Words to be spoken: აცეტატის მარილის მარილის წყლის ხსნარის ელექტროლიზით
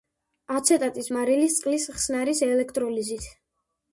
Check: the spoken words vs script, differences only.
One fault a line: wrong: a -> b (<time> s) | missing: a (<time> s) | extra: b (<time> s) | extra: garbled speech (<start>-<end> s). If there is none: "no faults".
missing: მარილის (1.6 s)